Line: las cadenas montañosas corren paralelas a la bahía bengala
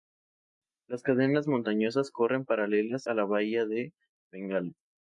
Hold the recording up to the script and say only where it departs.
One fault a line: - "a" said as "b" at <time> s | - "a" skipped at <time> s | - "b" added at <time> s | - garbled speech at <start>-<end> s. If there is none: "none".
- "de" added at 3.6 s